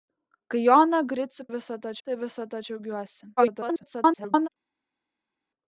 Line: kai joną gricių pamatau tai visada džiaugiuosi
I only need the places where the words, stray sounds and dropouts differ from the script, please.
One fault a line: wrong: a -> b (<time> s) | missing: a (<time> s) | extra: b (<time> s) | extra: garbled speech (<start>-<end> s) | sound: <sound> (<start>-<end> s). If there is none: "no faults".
wrong: pamatau -> visada (1.5 s)
extra: garbled speech (3.4-4.5 s)